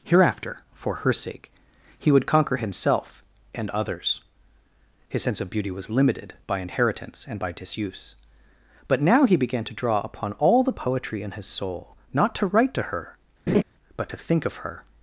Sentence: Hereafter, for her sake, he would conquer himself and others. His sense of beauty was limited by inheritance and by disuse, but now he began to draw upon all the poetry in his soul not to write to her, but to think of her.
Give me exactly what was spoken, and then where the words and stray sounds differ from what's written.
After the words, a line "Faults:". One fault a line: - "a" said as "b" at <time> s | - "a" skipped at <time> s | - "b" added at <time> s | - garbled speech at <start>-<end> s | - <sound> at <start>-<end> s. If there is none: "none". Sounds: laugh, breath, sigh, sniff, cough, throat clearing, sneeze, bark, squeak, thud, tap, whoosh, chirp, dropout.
Hereafter, for her sake, he would conquer himself and others. His sense of beauty was limited by inheritance and by disuse, but now he began to draw upon all the poetry in his soul not to write to her, but to think of her.
Faults:
- laugh at 13.5-13.6 s